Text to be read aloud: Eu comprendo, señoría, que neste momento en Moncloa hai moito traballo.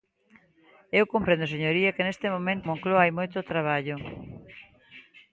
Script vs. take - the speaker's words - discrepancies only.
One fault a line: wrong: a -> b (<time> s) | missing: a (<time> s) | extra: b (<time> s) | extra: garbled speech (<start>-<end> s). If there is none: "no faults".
missing: en (2.7 s)